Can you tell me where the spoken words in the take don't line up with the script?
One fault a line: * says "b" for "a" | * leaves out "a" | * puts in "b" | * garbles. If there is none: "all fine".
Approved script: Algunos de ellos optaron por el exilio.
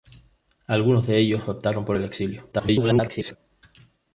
* garbles